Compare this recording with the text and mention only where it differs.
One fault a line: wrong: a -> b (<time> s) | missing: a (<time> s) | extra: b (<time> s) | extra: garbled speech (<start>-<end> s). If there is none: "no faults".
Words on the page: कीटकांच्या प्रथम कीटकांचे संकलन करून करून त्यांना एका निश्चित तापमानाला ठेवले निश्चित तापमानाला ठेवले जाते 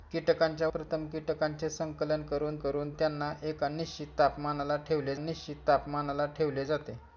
no faults